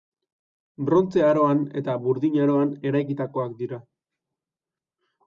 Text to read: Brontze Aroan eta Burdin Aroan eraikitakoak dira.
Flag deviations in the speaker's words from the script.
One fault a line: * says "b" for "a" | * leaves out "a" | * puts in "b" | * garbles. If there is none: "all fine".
all fine